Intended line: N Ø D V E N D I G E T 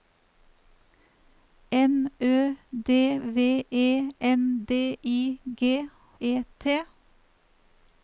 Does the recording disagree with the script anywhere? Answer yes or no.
no